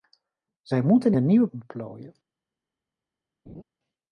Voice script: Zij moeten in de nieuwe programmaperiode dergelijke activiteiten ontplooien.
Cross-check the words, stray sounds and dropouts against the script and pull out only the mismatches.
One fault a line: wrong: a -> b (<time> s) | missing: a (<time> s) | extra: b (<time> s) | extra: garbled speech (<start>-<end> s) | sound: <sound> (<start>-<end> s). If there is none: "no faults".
missing: in (1.1 s)
missing: programmaperiode dergelijke activiteiten (1.5 s)
sound: laugh (3.5-3.6 s)